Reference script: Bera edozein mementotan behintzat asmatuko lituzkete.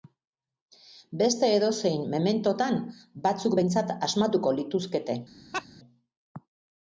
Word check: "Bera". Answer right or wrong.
wrong